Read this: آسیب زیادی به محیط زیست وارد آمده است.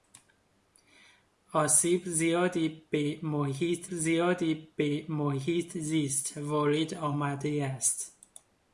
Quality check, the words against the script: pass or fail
fail